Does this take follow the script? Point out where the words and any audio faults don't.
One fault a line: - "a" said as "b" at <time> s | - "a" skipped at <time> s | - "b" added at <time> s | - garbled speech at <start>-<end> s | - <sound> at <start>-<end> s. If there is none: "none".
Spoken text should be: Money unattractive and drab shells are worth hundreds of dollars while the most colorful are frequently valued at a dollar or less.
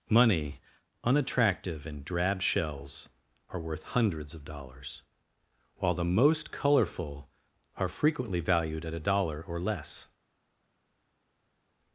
none